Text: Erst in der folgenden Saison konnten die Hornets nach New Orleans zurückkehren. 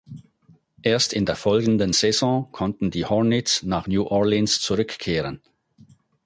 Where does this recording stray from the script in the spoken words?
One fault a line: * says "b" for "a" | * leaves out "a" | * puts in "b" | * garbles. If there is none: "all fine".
all fine